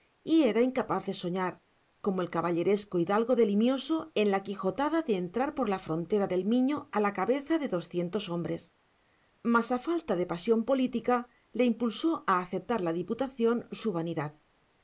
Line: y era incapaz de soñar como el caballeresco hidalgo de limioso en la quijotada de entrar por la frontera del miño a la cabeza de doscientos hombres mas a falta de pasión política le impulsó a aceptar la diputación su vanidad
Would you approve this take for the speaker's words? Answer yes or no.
yes